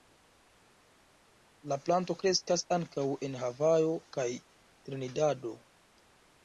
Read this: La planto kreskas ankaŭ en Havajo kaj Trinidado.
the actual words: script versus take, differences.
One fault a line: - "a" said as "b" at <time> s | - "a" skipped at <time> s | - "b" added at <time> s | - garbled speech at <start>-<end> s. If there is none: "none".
none